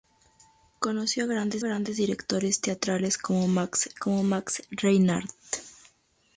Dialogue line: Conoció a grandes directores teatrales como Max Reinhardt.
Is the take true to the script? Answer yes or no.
no